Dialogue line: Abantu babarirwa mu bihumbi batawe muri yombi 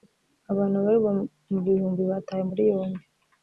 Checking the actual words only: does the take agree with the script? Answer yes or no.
yes